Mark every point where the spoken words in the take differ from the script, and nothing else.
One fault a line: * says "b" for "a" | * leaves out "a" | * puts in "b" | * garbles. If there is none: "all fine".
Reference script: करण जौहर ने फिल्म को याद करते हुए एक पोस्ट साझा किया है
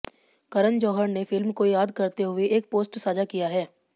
all fine